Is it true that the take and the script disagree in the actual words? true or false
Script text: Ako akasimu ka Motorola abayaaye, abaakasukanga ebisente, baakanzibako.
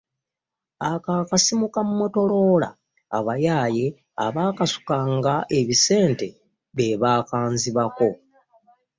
true